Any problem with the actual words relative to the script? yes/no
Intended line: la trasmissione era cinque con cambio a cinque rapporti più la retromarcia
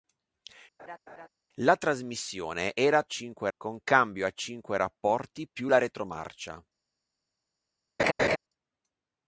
no